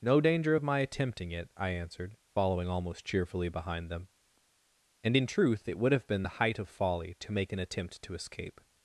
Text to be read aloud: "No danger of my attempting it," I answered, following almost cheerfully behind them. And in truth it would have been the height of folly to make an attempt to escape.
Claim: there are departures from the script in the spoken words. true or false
false